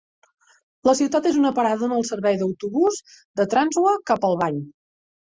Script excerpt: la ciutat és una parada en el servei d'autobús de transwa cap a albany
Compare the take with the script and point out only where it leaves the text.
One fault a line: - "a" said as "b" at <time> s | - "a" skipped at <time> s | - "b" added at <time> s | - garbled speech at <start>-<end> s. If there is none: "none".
none